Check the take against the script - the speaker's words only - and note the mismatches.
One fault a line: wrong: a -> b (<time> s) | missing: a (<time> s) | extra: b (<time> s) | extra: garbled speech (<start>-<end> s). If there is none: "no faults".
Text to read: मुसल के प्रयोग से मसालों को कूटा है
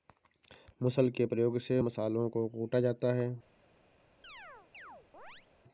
extra: जाता (2.8 s)